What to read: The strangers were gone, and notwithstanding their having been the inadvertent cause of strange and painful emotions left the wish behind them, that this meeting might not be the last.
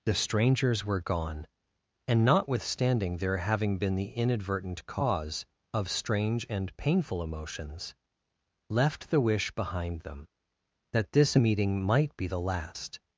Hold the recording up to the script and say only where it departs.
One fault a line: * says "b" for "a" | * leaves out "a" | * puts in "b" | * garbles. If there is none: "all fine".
* leaves out "not"